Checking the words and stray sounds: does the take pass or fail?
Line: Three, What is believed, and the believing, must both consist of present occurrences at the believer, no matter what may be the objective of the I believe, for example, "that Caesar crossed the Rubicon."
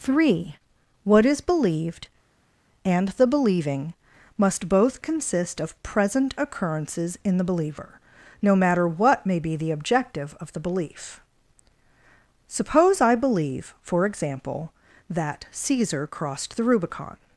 fail